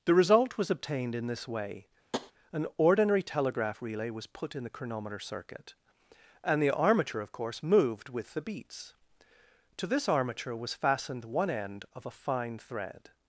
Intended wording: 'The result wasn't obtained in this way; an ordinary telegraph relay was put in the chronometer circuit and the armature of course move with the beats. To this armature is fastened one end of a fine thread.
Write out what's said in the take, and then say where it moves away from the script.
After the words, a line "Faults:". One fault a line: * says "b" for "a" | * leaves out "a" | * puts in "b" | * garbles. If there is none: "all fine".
'The result was obtained in this way; an ordinary telegraph relay was put in the chronometer circuit and the armature of course moved with the beats. To this armature was fastened one end of a fine thread.
Faults:
* says "was" for "wasn't"
* says "moved" for "move"
* says "was" for "is"